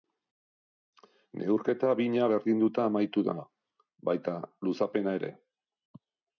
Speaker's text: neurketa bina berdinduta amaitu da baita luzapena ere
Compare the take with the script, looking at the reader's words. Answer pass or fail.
pass